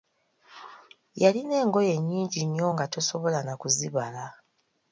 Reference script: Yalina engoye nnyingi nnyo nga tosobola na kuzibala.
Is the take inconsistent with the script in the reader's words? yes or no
no